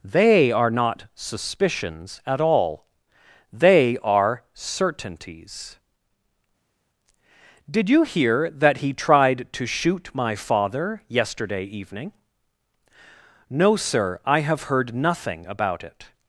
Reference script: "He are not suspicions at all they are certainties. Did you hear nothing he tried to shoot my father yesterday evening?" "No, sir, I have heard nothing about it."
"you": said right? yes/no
yes